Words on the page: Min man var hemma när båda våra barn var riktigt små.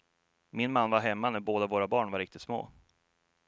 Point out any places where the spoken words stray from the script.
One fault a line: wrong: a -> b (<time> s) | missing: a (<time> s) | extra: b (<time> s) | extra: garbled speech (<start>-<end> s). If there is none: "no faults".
no faults